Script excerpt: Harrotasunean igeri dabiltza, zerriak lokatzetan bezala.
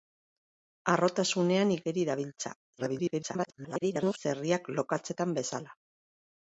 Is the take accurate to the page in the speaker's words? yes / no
no